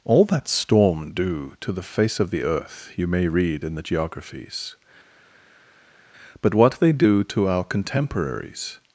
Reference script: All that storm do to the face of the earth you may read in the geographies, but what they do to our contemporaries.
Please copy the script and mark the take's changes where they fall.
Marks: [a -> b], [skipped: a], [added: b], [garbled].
All that storm do to the face of the earth you may read in the geographies, but what they do to our contemporaries.